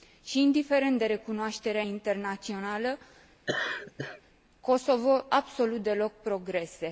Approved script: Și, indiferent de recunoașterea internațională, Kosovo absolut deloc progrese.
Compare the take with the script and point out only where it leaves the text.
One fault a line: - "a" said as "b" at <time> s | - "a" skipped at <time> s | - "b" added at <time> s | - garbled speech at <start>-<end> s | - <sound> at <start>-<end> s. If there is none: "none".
- laugh at 3.5-4.2 s